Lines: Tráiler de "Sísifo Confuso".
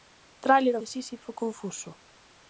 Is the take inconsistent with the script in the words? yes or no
no